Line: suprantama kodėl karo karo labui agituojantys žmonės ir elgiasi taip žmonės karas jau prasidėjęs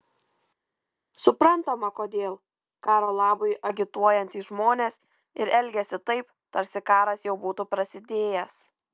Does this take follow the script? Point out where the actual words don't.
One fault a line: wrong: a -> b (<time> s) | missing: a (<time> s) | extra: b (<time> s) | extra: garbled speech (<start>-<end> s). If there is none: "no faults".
missing: karo (3.1 s)
wrong: žmonės -> tarsi (6.6 s)
extra: būtų (7.5 s)